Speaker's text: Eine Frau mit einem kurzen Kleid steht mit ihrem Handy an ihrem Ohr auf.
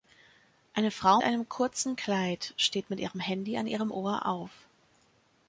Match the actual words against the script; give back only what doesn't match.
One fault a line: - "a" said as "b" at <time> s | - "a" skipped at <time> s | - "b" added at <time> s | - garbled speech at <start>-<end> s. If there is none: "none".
- "mit" skipped at 1.2 s